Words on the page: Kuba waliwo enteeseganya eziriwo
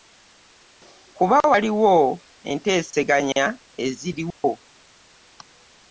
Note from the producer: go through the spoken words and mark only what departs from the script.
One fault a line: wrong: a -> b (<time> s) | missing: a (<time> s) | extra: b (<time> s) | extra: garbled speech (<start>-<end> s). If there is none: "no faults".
no faults